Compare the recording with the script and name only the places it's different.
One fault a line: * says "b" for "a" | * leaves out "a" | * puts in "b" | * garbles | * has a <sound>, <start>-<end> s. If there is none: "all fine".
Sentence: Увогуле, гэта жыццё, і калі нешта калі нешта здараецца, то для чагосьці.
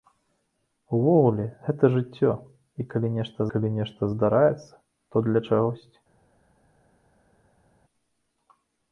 all fine